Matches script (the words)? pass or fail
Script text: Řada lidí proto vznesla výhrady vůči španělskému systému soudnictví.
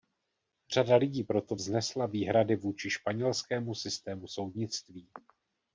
pass